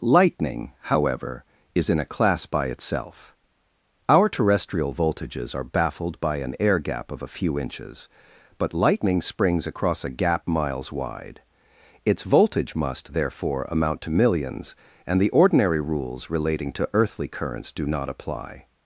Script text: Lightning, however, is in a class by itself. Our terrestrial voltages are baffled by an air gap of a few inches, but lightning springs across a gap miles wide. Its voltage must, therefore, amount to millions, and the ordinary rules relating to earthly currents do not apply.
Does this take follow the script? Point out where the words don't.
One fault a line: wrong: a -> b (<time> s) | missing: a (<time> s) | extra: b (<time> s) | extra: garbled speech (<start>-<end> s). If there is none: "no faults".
no faults